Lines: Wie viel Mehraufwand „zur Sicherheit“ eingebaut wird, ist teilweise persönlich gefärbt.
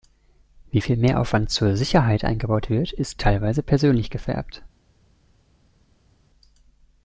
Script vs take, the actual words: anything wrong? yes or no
no